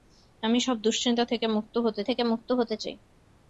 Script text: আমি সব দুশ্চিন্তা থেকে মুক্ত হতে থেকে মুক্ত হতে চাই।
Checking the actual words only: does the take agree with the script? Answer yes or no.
yes